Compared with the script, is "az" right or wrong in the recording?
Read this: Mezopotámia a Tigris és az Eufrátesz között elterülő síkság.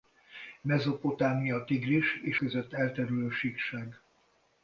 wrong